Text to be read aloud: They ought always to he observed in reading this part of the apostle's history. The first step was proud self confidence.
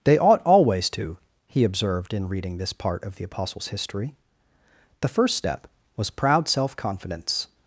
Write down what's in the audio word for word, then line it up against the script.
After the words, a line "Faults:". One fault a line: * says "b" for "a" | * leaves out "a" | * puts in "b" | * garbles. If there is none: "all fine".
They ought always to he observed in reading this part of the apostle's history. The first step was proud self confidence.
Faults:
all fine